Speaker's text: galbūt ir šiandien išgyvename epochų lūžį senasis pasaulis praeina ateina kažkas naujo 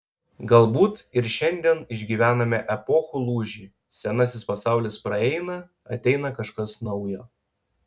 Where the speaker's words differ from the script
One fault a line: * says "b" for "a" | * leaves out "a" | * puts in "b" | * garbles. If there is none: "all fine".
all fine